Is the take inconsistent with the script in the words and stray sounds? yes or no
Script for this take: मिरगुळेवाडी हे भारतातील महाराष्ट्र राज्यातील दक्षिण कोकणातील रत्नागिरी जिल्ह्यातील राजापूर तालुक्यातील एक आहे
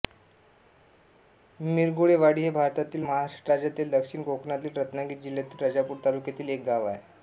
yes